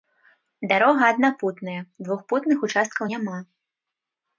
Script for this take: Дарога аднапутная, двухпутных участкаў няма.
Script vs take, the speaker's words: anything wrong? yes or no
no